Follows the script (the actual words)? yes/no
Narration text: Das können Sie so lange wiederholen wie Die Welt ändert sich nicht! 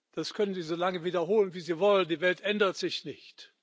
no